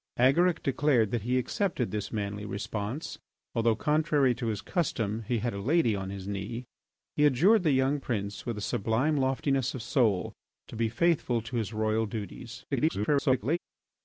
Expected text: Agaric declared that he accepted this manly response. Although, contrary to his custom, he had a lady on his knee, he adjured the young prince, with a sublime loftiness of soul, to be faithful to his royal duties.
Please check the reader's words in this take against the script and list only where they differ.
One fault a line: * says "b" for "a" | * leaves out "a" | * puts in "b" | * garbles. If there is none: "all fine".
* garbles